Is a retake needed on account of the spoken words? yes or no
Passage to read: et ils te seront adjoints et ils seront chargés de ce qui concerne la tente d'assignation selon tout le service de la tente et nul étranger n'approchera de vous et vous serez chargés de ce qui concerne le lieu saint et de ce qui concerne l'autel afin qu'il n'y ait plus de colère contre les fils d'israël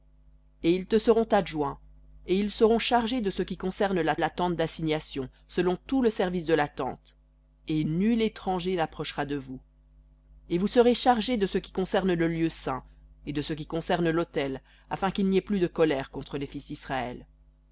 yes